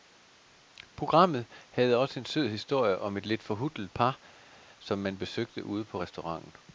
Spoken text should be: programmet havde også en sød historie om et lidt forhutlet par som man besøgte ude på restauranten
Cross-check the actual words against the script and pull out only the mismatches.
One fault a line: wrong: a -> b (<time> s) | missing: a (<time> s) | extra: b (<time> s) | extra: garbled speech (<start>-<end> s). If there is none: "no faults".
no faults